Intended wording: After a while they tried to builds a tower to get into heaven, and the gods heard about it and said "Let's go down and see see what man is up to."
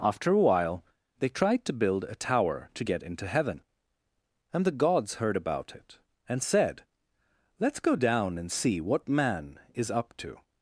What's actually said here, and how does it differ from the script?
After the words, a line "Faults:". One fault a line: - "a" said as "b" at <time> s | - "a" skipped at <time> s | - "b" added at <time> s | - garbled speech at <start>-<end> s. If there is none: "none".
After a while they tried to build a tower to get into heaven, and the gods heard about it and said "Let's go down and see what man is up to."
Faults:
- "builds" said as "build" at 1.7 s
- "see" skipped at 8.8 s